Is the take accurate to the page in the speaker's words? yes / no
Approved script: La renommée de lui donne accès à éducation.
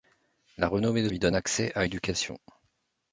yes